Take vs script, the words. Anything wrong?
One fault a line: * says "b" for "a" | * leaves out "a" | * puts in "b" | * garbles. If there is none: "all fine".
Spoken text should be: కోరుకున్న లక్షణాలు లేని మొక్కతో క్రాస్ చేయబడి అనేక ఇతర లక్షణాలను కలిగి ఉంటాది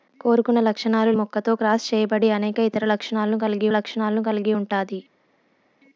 * leaves out "లేని"
* puts in "లక్షణాలను కలిగి"